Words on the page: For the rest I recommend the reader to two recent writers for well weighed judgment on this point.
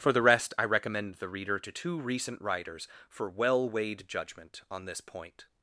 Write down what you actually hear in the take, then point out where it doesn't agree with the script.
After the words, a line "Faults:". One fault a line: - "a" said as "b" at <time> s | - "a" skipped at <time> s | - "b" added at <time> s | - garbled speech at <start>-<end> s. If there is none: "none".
For the rest I recommend the reader to two recent writers for well weighed judgment on this point.
Faults:
none